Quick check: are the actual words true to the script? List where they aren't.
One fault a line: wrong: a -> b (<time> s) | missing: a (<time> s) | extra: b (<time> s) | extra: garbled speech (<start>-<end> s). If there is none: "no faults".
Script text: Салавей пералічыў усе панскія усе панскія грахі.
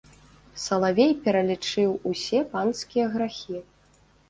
missing: усе панскія (3.1 s)